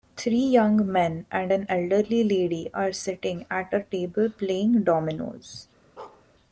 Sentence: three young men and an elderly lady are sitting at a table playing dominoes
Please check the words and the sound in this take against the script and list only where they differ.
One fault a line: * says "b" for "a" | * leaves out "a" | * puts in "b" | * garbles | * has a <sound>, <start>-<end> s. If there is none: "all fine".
* has a bark, 6.0-6.3 s